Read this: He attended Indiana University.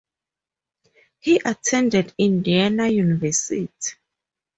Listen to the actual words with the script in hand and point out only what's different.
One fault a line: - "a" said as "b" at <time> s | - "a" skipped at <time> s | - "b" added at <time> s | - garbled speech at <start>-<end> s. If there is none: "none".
none